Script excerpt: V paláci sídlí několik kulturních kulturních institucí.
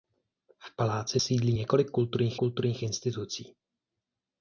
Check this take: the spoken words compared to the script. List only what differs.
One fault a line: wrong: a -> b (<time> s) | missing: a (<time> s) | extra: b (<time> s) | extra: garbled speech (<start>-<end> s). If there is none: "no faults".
no faults